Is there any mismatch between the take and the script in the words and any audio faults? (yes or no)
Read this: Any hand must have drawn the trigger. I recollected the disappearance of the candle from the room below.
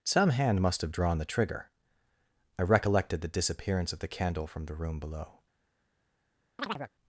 yes